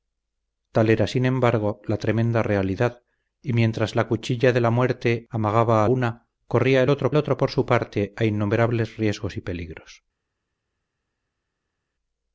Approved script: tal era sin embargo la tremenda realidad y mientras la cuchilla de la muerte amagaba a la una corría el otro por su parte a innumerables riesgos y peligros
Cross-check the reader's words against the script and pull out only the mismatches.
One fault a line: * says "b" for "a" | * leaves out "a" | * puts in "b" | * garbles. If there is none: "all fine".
* leaves out "la"
* puts in "otro"